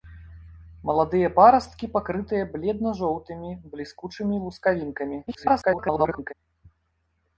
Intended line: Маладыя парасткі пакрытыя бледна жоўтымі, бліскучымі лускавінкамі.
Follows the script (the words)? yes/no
no